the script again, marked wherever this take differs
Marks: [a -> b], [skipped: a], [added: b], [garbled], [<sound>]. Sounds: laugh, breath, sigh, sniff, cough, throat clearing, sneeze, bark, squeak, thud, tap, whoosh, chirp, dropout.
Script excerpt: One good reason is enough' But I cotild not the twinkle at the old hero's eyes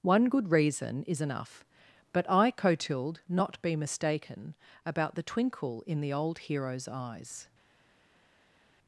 One good reason is enough' But I cotild not [added: be mistaken about] the twinkle [at -> in] the old hero's eyes